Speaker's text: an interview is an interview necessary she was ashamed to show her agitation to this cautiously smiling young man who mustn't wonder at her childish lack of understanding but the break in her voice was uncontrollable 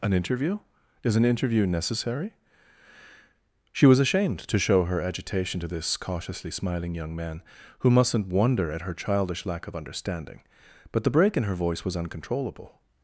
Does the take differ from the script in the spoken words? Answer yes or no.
no